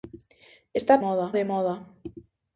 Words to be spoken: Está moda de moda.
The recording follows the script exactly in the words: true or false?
true